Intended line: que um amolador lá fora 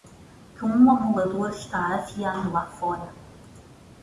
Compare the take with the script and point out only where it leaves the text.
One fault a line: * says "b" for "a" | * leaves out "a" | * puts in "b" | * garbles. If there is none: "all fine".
* puts in "está afiando"